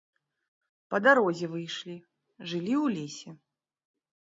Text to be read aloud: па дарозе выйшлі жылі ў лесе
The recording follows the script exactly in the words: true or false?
true